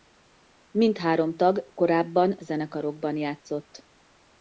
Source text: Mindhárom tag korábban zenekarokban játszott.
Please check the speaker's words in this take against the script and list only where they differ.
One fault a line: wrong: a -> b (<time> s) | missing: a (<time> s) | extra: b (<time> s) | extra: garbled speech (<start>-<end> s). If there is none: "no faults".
no faults